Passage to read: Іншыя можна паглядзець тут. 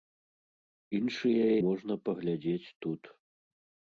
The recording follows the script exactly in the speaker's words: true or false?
true